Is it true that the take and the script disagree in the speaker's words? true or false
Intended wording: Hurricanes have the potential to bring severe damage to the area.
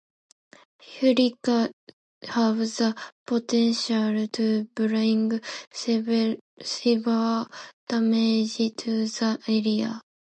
false